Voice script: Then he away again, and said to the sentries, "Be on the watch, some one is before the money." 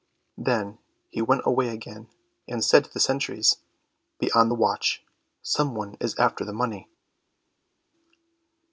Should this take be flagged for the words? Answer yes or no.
yes